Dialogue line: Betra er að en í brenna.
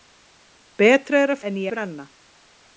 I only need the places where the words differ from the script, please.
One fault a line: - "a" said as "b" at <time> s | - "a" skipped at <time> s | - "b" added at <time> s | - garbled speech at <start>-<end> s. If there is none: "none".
none